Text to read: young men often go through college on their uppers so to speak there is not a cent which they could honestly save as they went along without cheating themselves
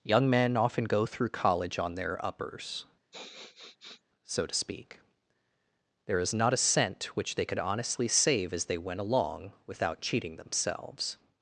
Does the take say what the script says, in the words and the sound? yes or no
no